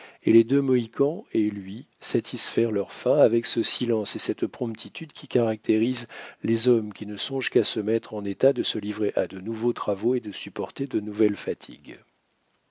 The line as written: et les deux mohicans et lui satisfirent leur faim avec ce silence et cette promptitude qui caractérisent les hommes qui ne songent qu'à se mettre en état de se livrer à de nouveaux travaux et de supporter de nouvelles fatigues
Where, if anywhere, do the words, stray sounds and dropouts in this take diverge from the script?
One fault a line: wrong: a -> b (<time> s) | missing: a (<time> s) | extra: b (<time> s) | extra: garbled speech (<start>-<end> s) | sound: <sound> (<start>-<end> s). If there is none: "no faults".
no faults